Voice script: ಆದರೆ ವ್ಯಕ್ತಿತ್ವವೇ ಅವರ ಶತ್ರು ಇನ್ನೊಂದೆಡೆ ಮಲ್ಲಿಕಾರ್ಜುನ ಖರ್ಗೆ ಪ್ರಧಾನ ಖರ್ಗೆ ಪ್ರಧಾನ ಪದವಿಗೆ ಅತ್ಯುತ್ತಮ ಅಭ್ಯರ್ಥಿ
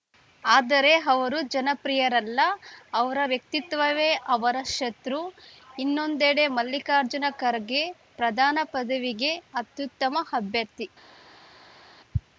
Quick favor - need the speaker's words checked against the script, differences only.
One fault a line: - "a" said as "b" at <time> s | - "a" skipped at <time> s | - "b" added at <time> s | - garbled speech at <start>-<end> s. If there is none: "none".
- "ಅವರು ಜನಪ್ರಿಯರಲ್ಲ ಅವರ" added at 1.1 s
- "ಖರ್ಗೆ ಪ್ರಧಾನ" skipped at 8.6 s